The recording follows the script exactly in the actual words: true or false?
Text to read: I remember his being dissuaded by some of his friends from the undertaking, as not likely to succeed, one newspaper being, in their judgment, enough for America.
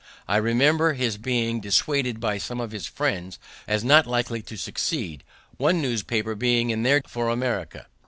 false